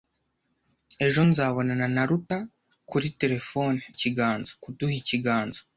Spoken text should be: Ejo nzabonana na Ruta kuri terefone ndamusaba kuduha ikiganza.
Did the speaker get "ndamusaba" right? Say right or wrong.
wrong